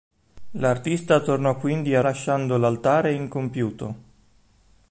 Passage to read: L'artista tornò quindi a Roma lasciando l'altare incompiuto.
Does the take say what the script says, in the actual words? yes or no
no